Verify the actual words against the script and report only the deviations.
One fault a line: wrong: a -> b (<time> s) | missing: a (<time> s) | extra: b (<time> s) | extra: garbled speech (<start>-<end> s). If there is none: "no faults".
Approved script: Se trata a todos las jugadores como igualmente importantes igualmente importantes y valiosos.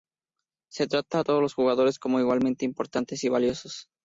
wrong: las -> los (1.4 s)
missing: igualmente importantes (3.2 s)